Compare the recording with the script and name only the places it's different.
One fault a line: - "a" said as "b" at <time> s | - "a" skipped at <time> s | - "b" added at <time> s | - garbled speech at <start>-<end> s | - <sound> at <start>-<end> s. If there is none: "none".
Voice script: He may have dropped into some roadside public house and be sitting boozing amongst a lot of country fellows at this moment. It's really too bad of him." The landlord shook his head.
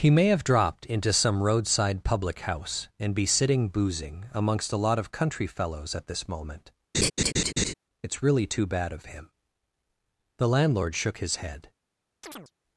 - laugh at 6.9-7.7 s
- chirp at 12.2-12.5 s